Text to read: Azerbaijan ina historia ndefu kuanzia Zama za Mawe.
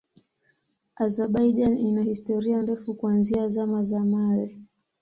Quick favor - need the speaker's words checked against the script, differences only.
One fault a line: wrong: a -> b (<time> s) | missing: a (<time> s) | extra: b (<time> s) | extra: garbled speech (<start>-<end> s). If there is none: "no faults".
no faults